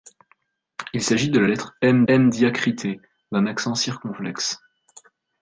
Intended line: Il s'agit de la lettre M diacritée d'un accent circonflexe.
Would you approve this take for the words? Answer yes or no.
no